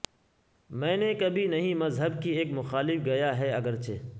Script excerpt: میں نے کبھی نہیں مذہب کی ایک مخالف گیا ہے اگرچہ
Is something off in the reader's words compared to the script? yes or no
no